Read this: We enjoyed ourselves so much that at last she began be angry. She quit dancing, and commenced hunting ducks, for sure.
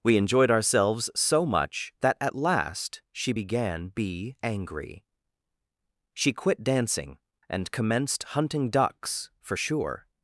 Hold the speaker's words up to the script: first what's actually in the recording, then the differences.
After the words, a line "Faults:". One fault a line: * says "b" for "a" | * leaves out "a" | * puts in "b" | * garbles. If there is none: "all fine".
We enjoyed ourselves so much that at last she began be angry. She quit dancing, and commenced hunting ducks, for sure.
Faults:
all fine